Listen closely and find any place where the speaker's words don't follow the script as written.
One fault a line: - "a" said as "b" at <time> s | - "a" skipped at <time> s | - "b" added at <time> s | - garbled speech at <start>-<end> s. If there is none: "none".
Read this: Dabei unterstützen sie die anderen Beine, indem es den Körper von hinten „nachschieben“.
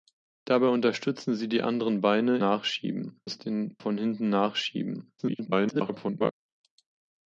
- "indem" said as "nachschieben" at 2.4 s
- "Körper" skipped at 3.8 s
- garbled speech at 5.2-6.3 s